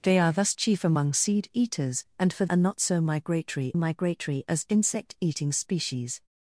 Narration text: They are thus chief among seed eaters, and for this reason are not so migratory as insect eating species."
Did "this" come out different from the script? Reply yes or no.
yes